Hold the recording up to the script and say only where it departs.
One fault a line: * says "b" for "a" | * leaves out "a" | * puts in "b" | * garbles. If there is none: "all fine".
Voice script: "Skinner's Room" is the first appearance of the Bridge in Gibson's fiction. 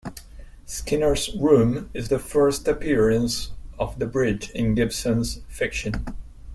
all fine